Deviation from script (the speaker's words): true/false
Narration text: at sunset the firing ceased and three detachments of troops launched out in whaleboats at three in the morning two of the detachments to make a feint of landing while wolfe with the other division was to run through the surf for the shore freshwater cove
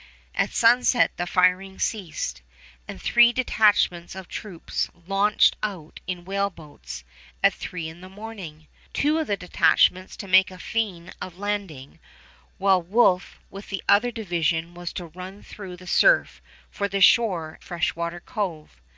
false